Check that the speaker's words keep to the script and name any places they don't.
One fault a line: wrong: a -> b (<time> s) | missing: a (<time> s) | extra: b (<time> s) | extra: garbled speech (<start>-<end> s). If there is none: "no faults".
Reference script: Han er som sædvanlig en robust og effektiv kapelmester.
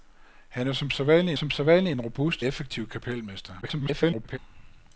extra: som sædvanlig (1.3 s)
missing: og (2.4 s)
extra: garbled speech (3.6-4.4 s)